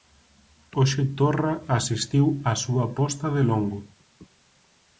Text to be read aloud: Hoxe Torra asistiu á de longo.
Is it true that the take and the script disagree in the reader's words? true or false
true